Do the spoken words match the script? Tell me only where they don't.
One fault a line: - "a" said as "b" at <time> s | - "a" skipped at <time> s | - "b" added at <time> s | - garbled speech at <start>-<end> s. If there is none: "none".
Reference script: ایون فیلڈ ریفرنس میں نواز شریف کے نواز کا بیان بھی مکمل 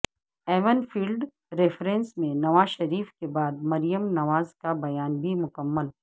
- "بعد مریم" added at 3.3 s